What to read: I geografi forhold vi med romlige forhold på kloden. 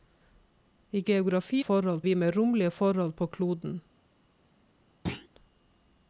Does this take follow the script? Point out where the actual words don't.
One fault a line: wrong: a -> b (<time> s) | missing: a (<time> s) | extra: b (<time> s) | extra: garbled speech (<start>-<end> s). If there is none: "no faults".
no faults